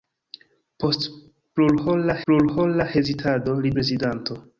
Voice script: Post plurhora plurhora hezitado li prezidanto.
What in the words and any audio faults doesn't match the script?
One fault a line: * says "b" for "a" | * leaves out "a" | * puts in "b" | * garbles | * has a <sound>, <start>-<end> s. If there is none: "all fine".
all fine